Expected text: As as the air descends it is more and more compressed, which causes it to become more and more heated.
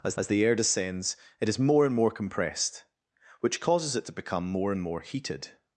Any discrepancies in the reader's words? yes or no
no